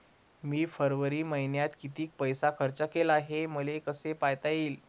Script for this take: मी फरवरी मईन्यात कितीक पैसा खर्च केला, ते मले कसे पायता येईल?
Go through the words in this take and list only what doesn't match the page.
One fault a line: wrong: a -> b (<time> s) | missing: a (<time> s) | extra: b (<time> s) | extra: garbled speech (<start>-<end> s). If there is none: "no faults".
wrong: ते -> हे (3.2 s)